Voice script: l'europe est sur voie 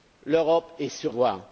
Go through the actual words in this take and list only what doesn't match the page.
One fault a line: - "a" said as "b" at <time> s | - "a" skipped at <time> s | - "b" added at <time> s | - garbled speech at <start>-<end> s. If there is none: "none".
none